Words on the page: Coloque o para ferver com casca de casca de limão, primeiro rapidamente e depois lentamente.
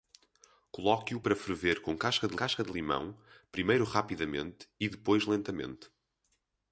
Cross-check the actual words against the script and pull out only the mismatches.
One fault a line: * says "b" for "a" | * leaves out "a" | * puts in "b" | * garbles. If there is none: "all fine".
all fine